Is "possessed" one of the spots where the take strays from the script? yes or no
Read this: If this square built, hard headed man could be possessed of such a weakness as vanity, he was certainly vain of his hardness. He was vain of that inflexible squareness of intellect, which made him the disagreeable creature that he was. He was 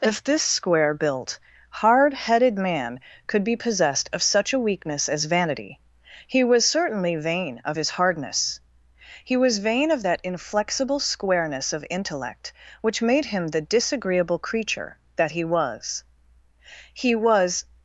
no